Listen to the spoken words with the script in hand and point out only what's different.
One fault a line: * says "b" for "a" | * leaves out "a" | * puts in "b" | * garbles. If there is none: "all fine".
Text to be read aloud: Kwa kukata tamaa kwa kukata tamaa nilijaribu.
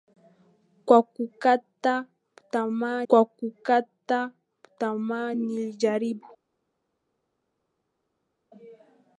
all fine